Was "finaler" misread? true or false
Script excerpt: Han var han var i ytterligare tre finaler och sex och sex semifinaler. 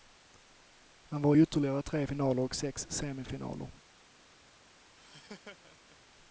false